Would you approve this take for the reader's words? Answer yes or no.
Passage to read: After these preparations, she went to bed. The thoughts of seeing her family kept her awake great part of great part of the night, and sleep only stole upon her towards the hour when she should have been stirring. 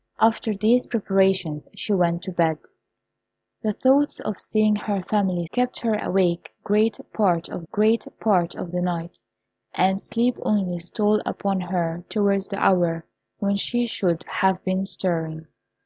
yes